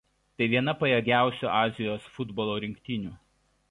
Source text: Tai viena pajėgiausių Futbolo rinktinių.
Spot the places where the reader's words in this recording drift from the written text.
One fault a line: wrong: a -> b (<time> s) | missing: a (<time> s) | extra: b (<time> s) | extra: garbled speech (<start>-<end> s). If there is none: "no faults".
extra: Azijos (1.6 s)